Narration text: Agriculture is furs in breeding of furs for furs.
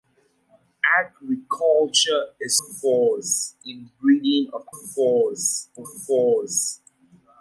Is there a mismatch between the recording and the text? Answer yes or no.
no